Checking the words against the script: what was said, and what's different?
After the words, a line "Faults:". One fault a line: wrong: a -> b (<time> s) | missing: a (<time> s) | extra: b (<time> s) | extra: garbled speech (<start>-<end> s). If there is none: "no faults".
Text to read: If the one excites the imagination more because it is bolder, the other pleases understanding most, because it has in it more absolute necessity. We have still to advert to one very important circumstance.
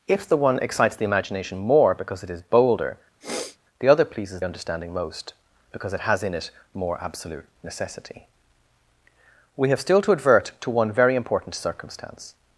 If the one excites the imagination more because it is bolder, the other pleases understanding most, because it has in it more absolute necessity. We have still to advert to one very important circumstance.
Faults:
no faults